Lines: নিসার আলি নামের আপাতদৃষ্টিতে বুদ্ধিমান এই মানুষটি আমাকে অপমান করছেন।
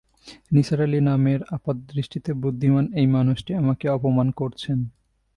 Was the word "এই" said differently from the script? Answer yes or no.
no